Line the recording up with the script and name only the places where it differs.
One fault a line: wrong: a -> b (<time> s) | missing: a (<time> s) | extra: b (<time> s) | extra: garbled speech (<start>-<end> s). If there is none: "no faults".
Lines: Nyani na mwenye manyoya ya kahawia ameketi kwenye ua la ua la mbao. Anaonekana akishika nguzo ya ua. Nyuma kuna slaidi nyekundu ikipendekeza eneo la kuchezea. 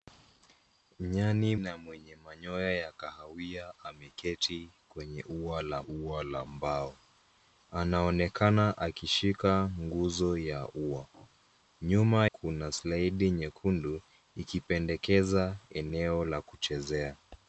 no faults